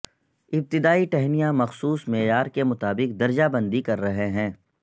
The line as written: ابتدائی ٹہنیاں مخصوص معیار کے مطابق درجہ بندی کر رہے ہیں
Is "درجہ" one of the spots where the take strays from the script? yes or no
no